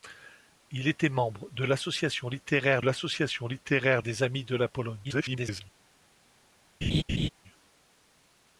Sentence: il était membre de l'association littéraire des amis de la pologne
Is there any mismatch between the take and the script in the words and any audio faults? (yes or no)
yes